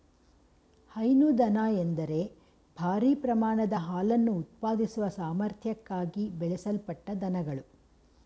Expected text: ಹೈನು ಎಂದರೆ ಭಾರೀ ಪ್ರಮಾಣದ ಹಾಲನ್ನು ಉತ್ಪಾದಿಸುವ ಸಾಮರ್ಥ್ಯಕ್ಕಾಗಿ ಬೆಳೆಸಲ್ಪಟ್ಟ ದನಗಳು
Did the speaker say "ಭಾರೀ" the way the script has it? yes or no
yes